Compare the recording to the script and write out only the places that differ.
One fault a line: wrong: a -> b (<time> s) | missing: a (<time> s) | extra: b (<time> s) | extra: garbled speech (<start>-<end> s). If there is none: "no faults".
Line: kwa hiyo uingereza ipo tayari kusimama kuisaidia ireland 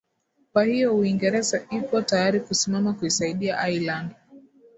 no faults